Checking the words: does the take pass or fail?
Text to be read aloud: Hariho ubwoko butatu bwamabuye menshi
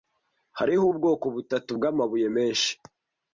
pass